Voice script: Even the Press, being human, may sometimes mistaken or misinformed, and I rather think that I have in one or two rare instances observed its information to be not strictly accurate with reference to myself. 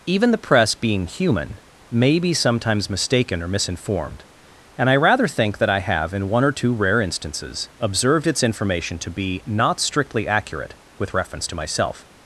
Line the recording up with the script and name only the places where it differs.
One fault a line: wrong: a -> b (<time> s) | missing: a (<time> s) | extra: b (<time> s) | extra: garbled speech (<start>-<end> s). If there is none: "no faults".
extra: be (2.2 s)